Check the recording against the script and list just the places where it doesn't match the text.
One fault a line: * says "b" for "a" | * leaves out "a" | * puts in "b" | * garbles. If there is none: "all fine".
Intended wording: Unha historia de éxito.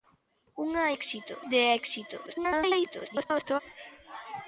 * says "éxito" for "historia"
* garbles